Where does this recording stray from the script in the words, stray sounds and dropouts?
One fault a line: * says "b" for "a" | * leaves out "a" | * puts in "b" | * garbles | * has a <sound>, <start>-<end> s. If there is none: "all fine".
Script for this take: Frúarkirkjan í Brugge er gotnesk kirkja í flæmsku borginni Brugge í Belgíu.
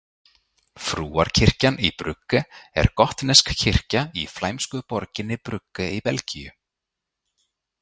all fine